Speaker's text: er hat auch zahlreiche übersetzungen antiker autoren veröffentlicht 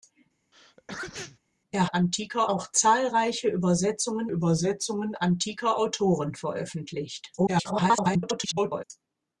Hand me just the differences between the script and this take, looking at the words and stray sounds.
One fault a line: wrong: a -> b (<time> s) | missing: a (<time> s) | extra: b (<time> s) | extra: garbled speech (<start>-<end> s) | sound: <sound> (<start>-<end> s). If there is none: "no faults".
sound: sneeze (0.5-1.4 s)
wrong: hat -> antiker (1.9 s)
extra: übersetzungen (4.3 s)
extra: garbled speech (7.4-8.8 s)